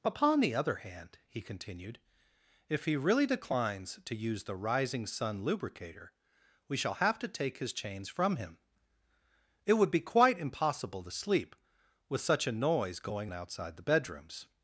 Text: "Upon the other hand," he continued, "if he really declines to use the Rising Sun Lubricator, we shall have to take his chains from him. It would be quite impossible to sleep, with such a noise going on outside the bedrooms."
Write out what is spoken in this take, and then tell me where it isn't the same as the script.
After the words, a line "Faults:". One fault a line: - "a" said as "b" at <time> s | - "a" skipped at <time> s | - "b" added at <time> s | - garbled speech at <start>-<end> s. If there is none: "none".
"Upon the other hand," he continued, "if he really declines to use the Rising Sun Lubricator, we shall have to take his chains from him. It would be quite impossible to sleep, with such a noise going outside the bedrooms."
Faults:
- "on" skipped at 13.3 s